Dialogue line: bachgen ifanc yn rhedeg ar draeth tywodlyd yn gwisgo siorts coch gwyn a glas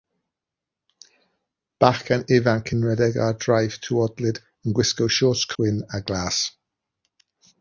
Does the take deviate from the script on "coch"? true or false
true